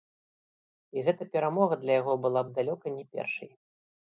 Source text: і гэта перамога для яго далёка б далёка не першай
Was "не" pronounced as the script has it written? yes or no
yes